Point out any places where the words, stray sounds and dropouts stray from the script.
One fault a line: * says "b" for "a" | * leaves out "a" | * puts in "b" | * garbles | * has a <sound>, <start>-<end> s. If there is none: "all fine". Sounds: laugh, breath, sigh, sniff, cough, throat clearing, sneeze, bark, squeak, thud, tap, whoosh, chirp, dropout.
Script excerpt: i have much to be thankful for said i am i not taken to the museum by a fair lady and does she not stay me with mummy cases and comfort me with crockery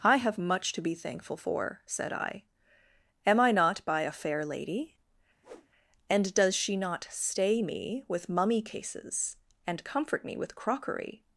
* leaves out "taken to the museum"
* has a whoosh, 5.4-5.7 s